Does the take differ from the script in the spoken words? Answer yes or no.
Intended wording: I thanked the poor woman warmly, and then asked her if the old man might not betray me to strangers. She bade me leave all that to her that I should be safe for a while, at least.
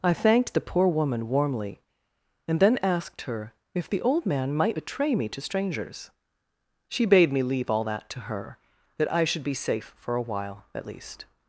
yes